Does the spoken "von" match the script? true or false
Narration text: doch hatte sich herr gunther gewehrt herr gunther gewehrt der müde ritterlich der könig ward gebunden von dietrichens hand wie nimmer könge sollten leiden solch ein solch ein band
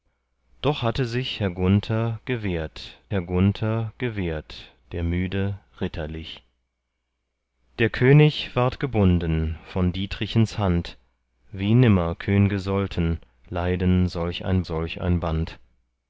true